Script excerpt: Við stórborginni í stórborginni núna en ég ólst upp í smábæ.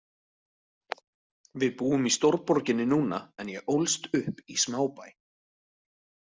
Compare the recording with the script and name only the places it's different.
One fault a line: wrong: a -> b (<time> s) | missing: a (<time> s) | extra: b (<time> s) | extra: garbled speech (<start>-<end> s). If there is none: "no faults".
wrong: stórborginni -> búum (1.8 s)